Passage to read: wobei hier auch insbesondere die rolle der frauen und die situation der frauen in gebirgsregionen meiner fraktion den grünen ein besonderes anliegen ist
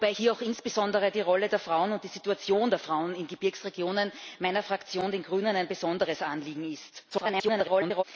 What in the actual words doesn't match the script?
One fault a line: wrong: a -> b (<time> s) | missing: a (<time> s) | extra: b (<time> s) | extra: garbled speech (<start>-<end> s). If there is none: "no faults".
extra: garbled speech (7.1-8.0 s)